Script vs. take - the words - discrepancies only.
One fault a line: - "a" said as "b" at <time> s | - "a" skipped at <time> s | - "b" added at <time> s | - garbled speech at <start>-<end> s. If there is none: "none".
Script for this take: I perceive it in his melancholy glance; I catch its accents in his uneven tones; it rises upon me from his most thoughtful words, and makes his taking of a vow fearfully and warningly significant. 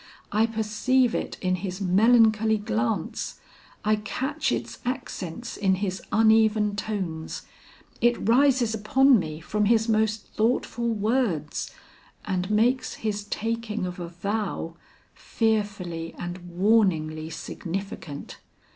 none